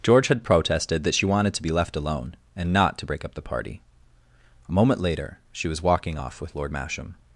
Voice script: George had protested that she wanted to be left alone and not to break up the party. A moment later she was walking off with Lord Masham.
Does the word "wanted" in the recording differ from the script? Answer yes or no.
no